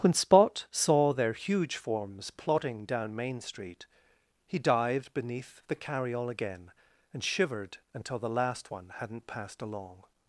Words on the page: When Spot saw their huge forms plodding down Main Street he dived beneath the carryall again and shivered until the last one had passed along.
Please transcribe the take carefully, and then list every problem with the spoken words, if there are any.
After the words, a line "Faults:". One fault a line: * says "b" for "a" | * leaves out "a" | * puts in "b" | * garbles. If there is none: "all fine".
When Spot saw their huge forms plodding down Main Street he dived beneath the carryall again and shivered until the last one hadn't passed along.
Faults:
* says "hadn't" for "had"